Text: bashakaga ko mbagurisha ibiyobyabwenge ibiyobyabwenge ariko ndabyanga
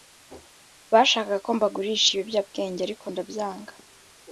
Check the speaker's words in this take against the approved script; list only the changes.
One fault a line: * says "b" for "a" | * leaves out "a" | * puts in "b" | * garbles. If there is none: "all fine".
* leaves out "ibiyobyabwenge"